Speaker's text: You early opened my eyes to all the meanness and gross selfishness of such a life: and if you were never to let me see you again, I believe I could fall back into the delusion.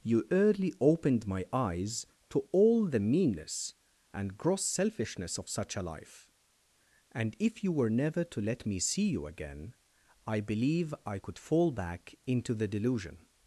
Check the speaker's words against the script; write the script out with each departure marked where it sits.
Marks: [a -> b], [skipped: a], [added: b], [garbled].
You early opened my eyes to all the meanness and gross selfishness of such a life: and if you were never to let me see you again, I believe I could fall back into the delusion.